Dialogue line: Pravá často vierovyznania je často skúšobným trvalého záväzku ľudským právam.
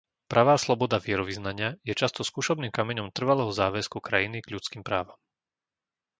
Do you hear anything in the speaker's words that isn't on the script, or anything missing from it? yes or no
yes